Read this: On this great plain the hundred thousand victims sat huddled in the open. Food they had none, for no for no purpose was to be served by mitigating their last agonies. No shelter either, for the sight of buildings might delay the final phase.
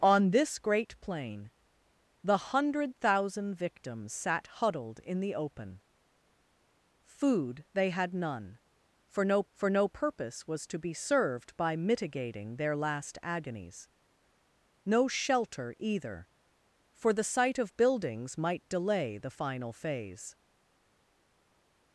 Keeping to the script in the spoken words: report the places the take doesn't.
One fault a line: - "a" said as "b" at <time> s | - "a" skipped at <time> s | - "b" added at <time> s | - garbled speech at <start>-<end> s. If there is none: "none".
none